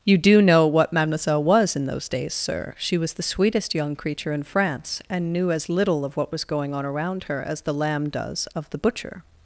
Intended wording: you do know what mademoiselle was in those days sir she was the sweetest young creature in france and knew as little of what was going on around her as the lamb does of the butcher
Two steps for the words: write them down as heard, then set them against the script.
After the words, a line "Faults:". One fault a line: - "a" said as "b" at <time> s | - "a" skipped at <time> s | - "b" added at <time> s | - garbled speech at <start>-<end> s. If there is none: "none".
you do know what mademoiselle was in those days sir she was the sweetest young creature in france and knew as little of what was going on around her as the lamb does of the butcher
Faults:
none